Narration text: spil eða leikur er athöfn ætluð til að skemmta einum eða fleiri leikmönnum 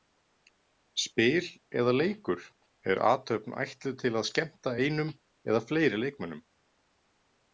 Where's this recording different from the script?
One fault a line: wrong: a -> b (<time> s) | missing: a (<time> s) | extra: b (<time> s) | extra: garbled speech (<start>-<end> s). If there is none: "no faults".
no faults